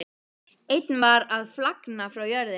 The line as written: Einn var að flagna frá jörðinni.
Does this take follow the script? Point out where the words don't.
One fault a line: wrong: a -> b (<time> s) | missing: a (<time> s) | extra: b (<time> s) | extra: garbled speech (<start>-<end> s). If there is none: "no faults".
no faults